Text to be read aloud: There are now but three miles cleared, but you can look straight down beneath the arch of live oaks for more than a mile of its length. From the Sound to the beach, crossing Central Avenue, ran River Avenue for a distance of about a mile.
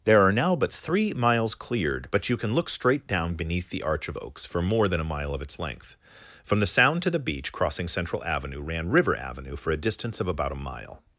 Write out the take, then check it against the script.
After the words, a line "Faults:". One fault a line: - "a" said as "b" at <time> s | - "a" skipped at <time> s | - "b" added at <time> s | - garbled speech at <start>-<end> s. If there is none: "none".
There are now but three miles cleared, but you can look straight down beneath the arch of oaks for more than a mile of its length. From the Sound to the beach, crossing Central Avenue, ran River Avenue for a distance of about a mile.
Faults:
- "live" skipped at 4.2 s